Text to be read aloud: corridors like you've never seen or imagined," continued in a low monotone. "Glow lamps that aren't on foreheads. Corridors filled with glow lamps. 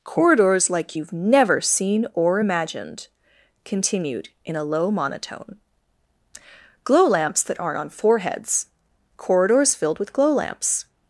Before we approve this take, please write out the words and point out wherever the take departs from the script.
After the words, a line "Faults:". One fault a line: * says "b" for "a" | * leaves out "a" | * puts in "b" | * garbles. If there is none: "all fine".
corridors like you've never seen or imagined," continued in a low monotone. "Glow lamps that aren't on foreheads. Corridors filled with glow lamps.
Faults:
all fine